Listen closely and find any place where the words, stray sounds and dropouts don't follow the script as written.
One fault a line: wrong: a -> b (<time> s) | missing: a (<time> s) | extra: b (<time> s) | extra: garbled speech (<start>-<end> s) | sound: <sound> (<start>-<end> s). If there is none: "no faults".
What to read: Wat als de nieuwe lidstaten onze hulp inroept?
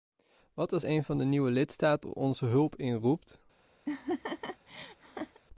extra: een van (0.8 s)
sound: laugh (3.8-5.4 s)